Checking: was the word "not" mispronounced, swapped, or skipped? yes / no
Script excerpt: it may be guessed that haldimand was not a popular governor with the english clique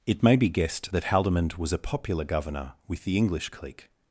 yes